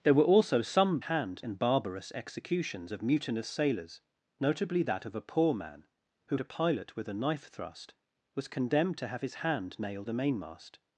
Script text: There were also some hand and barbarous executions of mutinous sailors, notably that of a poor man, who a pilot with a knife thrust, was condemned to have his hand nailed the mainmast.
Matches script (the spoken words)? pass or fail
pass